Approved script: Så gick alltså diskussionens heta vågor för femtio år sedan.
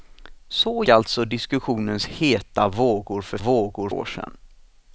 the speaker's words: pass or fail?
fail